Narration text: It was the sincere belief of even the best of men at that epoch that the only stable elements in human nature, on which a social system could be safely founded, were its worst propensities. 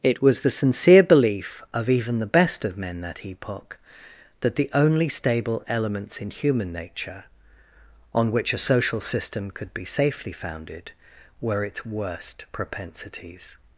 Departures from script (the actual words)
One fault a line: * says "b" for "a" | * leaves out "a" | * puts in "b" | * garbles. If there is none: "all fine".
* leaves out "at"